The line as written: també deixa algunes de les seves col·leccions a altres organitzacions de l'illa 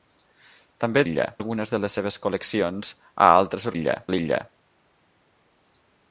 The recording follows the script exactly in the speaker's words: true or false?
false